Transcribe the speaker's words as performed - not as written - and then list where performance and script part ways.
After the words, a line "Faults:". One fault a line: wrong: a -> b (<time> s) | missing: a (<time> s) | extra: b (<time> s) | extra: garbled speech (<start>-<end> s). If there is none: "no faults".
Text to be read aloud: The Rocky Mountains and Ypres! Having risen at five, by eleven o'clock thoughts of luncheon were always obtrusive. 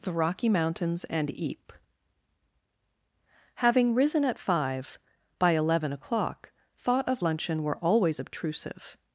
The Rocky Mountains and Ypres! Having risen at five, by eleven o'clock thought of luncheon were always obtrusive.
Faults:
wrong: thoughts -> thought (6.8 s)